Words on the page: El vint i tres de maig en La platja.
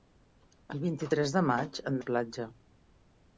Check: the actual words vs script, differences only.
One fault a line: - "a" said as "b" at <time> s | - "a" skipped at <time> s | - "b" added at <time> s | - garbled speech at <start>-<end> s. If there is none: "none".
none